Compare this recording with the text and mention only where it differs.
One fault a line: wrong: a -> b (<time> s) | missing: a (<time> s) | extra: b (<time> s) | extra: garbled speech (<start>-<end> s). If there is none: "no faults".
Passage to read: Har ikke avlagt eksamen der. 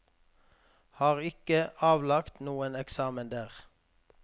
extra: noen (2.5 s)